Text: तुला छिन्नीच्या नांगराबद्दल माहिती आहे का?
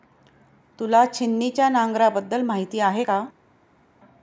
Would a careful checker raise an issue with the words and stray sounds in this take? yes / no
no